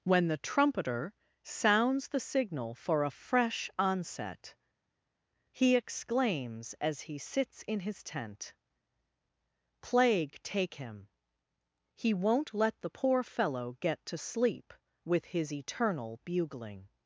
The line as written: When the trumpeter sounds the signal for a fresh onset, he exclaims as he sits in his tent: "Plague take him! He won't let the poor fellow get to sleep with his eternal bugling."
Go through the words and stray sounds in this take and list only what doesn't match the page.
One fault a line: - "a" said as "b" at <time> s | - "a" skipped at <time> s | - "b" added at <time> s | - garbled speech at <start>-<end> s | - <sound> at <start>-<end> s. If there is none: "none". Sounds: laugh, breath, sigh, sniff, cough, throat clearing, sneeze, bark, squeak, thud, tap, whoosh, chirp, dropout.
none